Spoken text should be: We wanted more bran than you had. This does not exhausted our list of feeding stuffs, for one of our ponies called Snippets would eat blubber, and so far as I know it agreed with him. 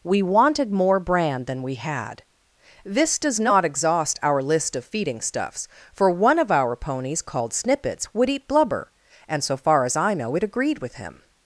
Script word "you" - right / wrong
wrong